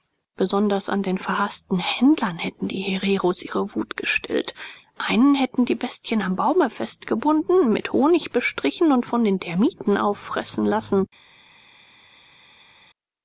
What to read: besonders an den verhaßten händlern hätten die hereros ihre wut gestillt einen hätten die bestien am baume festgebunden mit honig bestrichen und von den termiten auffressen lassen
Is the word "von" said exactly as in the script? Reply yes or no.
yes